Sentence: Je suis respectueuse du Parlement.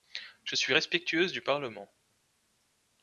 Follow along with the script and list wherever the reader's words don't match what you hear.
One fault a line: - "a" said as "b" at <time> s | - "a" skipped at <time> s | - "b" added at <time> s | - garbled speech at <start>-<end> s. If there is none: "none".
none